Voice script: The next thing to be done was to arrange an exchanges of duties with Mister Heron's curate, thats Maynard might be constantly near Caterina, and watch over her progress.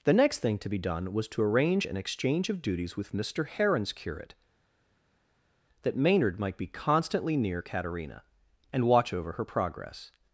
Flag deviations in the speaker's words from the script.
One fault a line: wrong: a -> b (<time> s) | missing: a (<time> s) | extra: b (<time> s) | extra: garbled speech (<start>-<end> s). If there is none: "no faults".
wrong: exchanges -> exchange (2.0 s)
wrong: thats -> that (5.8 s)